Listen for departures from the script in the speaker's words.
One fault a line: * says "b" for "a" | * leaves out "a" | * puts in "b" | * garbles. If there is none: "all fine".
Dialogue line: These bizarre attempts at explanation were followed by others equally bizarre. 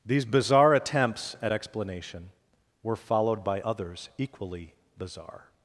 all fine